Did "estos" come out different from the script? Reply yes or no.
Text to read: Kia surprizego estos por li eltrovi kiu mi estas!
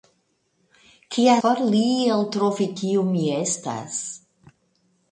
yes